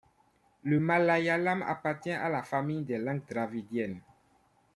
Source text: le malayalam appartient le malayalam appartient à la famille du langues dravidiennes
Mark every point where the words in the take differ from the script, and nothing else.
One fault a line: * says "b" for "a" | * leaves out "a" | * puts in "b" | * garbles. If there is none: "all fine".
* leaves out "le malayalam appartient"
* says "des" for "du"